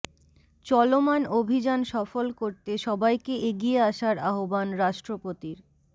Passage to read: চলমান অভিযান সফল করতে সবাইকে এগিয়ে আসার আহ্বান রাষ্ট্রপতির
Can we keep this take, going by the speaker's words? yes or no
yes